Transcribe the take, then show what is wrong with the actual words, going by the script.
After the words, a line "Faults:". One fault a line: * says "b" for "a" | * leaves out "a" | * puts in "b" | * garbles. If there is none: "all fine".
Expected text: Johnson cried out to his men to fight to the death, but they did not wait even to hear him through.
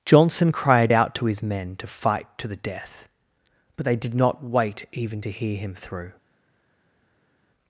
Johnson cried out to his men to fight to the death, but they did not wait even to hear him through.
Faults:
all fine